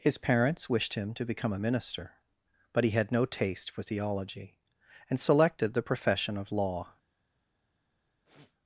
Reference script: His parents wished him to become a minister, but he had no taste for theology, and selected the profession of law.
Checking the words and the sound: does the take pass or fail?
fail